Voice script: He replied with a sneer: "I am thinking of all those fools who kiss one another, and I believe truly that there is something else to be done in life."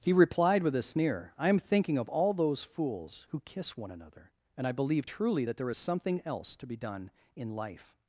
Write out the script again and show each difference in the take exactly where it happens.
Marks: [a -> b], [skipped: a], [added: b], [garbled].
He replied with a sneer: "I am thinking of all those fools who kiss one another, and I believe truly that there is something else to be done in life."